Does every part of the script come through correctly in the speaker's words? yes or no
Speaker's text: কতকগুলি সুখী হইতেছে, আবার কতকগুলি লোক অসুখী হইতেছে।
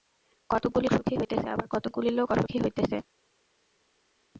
yes